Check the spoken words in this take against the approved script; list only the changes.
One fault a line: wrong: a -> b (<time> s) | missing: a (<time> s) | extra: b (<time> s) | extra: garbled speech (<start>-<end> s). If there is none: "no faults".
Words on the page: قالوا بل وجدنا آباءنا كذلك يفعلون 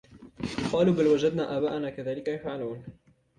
no faults